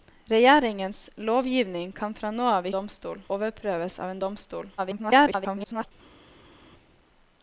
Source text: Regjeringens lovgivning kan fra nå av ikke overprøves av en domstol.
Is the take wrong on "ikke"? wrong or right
wrong